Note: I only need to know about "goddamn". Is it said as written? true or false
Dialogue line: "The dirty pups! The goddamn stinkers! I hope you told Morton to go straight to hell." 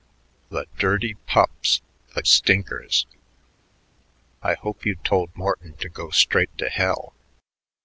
false